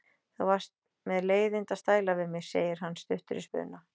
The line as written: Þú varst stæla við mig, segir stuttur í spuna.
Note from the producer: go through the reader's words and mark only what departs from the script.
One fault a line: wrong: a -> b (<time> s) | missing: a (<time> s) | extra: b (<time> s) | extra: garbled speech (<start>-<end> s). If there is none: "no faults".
extra: með leiðinda (1.1 s)
extra: hann (2.8 s)